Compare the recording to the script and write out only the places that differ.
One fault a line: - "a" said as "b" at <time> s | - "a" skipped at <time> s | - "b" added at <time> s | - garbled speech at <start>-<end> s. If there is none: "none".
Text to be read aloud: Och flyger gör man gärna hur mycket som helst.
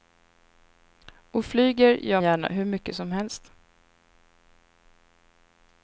- "man" skipped at 2.2 s